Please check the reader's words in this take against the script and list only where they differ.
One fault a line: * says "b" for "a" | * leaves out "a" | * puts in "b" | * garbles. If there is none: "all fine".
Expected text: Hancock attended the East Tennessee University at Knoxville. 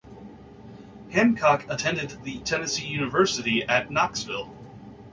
* leaves out "East"